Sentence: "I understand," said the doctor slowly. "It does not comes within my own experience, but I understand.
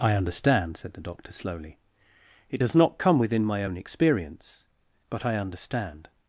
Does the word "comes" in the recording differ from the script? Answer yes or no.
yes